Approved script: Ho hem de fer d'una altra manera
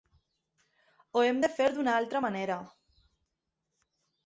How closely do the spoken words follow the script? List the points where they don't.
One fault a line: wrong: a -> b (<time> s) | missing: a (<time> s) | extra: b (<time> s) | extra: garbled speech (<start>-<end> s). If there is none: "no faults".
no faults